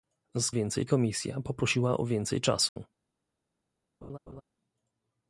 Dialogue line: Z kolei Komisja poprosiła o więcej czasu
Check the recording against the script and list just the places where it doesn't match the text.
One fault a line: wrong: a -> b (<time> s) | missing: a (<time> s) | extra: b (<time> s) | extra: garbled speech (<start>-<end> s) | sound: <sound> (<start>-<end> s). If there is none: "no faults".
wrong: kolei -> więcej (0.5 s)
sound: dropout (2.7-2.8 s)
sound: laugh (4.0-4.4 s)